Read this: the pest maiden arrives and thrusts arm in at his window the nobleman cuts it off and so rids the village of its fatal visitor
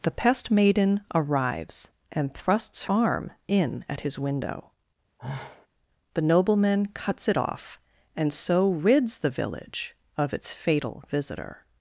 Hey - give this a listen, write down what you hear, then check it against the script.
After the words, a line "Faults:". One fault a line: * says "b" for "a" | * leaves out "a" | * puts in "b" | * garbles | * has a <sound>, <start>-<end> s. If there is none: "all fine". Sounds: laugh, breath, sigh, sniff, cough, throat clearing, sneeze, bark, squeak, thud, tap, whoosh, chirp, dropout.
the pest maiden arrives and thrusts arm in at his window the nobleman cuts it off and so rids the village of its fatal visitor
Faults:
* has a sigh, 5.2-5.7 s